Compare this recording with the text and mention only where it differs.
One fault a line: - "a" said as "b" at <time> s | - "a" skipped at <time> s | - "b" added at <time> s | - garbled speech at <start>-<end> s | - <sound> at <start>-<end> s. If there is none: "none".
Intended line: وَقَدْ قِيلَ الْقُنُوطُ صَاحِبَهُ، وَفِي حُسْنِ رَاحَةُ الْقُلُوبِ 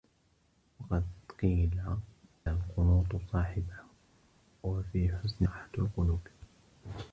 none